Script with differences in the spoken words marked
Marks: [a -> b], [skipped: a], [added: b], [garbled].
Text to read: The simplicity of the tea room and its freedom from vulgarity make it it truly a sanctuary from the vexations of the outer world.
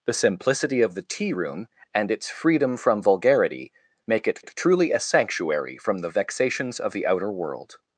The simplicity of the tea room and its freedom from vulgarity make it it truly a sanctuary from the vexations of the outer world.